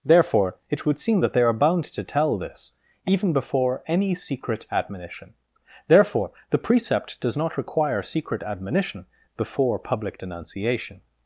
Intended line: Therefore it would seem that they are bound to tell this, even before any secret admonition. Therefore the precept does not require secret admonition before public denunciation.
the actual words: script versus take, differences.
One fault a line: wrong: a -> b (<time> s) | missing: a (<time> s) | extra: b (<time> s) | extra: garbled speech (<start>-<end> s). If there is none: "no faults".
no faults